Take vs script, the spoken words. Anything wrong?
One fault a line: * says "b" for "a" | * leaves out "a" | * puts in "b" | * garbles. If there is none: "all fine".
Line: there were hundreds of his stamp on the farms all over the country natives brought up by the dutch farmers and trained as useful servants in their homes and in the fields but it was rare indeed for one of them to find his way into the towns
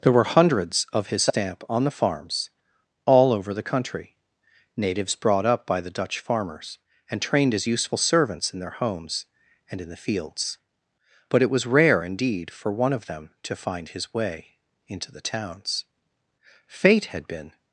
* puts in "fate had been"